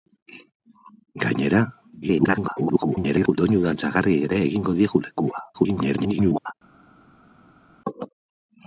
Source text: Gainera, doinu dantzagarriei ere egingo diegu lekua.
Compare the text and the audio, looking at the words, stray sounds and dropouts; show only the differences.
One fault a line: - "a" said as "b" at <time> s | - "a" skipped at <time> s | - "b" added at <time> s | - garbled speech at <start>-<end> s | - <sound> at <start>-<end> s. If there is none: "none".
- garbled speech at 2.0-3.4 s
- garbled speech at 5.5-6.5 s